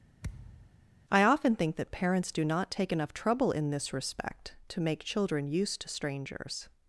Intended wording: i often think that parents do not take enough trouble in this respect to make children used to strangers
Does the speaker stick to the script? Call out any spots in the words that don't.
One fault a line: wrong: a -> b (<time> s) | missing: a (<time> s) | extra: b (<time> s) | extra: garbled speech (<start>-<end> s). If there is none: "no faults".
no faults